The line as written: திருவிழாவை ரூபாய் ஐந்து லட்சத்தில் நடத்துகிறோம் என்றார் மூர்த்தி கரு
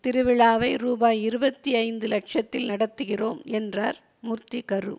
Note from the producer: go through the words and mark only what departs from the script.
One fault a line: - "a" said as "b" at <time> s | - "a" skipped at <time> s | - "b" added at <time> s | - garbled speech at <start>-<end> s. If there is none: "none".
- "இருபத்தி" added at 1.2 s